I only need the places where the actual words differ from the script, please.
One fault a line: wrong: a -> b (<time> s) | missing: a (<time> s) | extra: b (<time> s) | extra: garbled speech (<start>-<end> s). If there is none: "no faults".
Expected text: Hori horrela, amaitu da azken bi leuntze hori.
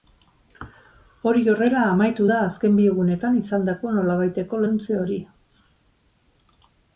extra: egunetan izandako nolabaiteko (2.9 s)